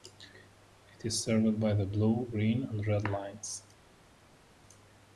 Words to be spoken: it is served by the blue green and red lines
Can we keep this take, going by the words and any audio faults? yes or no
yes